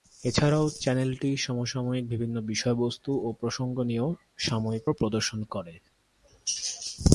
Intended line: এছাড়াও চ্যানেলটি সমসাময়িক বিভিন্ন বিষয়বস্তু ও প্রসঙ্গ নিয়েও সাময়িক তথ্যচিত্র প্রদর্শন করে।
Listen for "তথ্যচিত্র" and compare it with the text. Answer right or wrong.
wrong